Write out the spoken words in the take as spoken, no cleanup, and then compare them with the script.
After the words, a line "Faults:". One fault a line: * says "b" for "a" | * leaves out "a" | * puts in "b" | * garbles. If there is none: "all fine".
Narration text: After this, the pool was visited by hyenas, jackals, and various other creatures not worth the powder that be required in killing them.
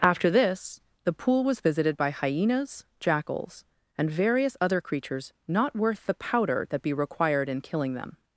After this, the pool was visited by hyenas, jackals, and various other creatures not worth the powder that be required in killing them.
Faults:
all fine